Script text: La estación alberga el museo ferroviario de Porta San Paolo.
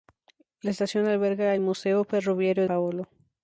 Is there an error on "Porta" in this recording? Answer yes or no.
yes